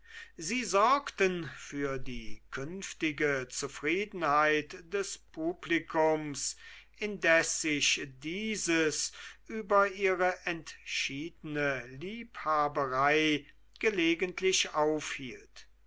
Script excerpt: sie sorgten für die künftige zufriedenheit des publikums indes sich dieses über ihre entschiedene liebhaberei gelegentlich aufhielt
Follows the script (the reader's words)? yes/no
yes